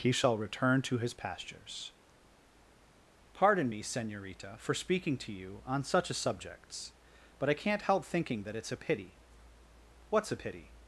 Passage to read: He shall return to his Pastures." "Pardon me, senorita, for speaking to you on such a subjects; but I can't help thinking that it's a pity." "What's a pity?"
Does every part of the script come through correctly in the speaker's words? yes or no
yes